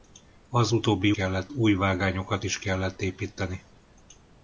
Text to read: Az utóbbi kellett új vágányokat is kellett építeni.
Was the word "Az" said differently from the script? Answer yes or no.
no